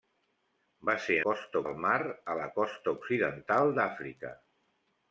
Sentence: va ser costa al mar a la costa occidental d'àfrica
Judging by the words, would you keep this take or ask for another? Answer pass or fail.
pass